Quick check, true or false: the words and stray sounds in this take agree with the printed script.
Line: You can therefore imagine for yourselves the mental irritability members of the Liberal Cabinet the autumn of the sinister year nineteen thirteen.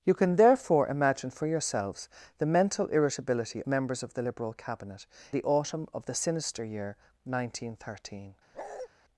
false